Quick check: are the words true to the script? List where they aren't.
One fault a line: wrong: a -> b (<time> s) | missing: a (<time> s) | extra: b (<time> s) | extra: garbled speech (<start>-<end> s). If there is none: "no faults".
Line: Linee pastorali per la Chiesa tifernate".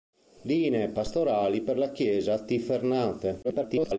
extra: garbled speech (3.4-4.0 s)